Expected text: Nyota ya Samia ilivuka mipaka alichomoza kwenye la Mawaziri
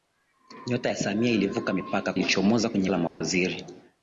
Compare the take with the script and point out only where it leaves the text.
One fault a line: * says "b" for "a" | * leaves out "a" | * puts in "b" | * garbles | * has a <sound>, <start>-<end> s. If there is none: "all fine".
* has a dropout, 3.1-3.2 s